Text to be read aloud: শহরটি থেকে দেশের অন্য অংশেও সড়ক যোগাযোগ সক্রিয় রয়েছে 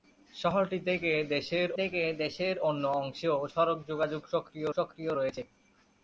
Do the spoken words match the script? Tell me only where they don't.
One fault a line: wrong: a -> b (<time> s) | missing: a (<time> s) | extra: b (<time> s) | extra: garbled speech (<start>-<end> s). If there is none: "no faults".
extra: থেকে দেশের (1.8 s)
extra: সক্রিয় (4.8 s)